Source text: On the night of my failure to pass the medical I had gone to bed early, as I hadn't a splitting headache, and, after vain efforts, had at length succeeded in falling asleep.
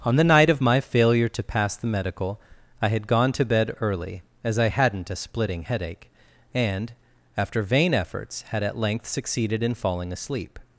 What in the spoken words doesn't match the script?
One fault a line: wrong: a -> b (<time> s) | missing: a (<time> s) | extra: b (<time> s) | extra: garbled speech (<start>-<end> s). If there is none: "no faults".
no faults